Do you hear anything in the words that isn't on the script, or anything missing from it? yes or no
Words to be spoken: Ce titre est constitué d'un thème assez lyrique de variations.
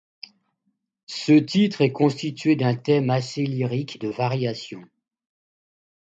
no